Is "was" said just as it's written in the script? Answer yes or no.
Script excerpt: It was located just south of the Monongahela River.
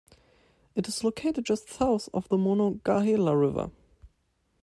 no